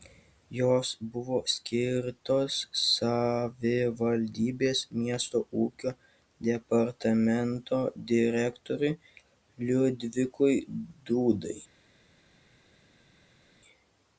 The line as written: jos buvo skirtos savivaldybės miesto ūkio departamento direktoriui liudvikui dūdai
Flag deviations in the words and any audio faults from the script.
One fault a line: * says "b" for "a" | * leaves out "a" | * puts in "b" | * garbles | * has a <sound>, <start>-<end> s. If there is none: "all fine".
all fine